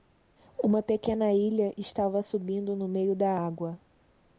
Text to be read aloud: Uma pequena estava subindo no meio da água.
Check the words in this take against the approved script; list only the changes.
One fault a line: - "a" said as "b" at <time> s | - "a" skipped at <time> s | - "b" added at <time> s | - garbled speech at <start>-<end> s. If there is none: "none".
- "ilha" added at 1.3 s